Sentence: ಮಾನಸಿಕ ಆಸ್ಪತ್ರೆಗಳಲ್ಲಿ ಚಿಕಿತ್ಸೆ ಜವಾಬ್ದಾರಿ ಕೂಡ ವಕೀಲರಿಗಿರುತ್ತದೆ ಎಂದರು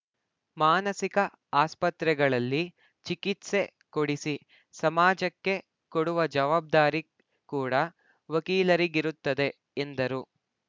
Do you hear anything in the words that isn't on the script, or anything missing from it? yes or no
yes